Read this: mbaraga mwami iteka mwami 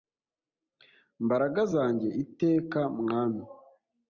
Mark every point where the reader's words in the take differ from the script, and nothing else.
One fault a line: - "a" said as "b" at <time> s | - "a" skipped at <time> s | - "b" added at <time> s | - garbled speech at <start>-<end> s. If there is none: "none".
- "mwami" said as "zanjye" at 1.7 s